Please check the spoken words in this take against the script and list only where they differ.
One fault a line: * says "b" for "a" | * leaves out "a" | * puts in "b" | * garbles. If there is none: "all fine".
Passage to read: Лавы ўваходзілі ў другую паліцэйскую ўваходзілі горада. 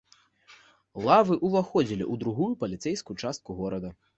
* says "частку" for "ўваходзілі"